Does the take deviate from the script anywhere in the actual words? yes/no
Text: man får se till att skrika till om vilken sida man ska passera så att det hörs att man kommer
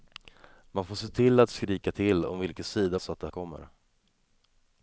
yes